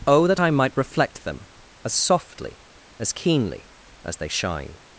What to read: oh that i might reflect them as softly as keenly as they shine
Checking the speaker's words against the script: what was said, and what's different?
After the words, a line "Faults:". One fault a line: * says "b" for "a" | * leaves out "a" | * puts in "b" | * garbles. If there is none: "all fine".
oh that i might reflect them as softly as keenly as they shine
Faults:
all fine